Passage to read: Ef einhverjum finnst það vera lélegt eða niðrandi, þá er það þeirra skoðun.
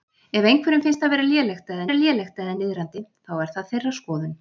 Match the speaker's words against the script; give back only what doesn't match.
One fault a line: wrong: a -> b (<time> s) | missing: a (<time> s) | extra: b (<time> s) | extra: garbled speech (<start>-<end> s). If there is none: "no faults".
extra: vera lélegt eða (1.9 s)